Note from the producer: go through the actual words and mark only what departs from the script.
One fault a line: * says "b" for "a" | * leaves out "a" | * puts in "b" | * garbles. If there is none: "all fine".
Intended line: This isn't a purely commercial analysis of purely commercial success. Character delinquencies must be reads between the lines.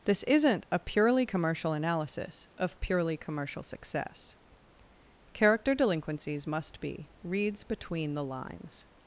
all fine